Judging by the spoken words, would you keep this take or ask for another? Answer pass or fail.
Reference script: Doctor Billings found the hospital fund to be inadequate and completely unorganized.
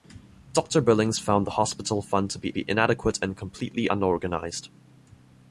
fail